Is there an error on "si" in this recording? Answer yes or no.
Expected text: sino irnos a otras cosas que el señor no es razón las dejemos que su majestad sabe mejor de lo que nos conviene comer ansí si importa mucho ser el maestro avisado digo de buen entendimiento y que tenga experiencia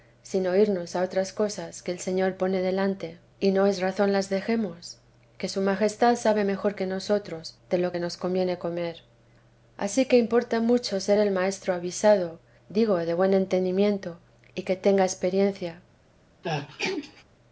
yes